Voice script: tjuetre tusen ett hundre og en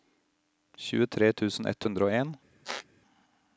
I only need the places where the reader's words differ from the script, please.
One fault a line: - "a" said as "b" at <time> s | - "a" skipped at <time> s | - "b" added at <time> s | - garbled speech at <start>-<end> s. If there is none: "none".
none